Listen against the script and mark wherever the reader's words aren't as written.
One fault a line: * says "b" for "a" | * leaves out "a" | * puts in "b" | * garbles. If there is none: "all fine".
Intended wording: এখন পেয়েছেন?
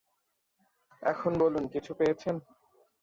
* puts in "বলুন কিছু"